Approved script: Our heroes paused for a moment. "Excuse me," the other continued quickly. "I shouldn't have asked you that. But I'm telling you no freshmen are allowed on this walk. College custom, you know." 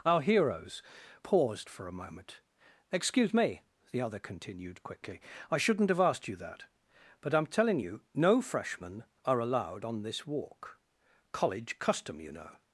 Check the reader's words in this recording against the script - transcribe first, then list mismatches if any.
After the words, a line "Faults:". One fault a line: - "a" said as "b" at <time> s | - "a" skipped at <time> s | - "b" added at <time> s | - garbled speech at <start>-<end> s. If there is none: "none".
Our heroes paused for a moment. "Excuse me," the other continued quickly. "I shouldn't have asked you that. But I'm telling you no freshmen are allowed on this walk. College custom, you know."
Faults:
none